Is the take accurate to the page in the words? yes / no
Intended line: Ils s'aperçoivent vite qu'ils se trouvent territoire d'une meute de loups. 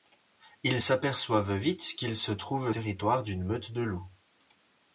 yes